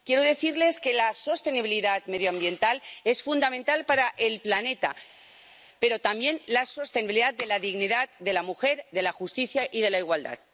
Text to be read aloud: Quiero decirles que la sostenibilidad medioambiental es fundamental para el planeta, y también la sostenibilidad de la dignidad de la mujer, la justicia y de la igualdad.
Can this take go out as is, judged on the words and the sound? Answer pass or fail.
fail